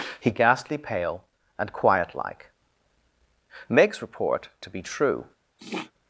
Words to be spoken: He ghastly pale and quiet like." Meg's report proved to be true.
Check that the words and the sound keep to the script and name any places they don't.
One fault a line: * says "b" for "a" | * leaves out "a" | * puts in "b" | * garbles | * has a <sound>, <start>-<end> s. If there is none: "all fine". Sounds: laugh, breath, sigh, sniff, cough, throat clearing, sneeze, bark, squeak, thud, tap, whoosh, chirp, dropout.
* leaves out "proved"
* has a sniff, 5.6-5.9 s